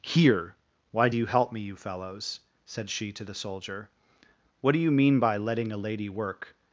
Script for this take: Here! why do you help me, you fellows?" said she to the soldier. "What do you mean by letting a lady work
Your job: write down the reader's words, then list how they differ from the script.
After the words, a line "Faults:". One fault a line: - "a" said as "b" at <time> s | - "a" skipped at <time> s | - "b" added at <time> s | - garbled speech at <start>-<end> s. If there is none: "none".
Here! why do you help me, you fellows?" said she to the soldier. "What do you mean by letting a lady work
Faults:
none